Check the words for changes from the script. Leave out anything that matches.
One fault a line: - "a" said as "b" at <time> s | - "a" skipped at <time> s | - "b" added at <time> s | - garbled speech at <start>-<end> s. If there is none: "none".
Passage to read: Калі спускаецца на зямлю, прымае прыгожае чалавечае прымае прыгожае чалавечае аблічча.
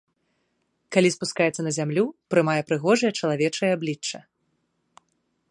- "прымае прыгожае чалавечае" skipped at 3.7 s